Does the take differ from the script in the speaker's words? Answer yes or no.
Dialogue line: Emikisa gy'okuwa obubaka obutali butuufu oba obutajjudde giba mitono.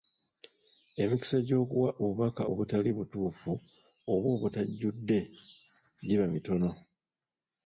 no